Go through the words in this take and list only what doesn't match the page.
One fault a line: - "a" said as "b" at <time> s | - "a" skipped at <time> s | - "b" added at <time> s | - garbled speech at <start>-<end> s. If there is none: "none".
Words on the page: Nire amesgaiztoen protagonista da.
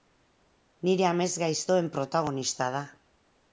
none